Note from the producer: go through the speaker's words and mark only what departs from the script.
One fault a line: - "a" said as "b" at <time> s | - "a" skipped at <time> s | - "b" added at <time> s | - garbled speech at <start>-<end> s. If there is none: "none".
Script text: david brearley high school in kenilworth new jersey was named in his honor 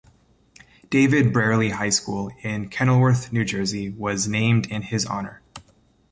none